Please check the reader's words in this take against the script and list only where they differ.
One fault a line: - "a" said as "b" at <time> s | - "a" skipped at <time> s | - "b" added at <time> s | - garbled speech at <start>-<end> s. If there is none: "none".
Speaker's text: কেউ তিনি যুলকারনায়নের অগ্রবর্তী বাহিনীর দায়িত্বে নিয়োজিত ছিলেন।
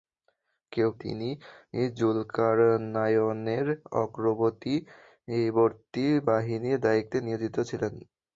none